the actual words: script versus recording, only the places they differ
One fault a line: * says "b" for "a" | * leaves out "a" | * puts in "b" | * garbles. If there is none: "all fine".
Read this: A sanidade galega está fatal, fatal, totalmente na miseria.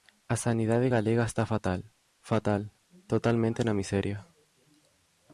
all fine